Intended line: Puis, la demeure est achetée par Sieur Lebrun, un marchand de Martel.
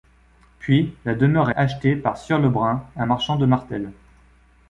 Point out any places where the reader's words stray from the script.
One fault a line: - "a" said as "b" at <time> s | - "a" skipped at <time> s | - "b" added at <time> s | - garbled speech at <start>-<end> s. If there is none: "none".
- "est" skipped at 1.5 s